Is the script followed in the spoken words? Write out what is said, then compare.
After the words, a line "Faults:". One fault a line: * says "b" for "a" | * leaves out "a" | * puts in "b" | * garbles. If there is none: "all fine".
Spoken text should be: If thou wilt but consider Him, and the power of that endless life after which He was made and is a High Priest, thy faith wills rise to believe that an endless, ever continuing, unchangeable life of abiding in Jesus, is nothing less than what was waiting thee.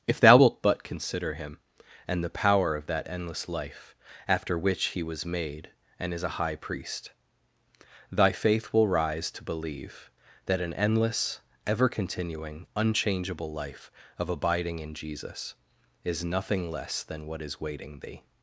If thou wilt but consider Him, and the power of that endless life after which He was made and is a High Priest, thy faith will rise to believe that an endless, ever continuing, unchangeable life of abiding in Jesus, is nothing less than what is waiting thee.
Faults:
* says "will" for "wills"
* says "is" for "was"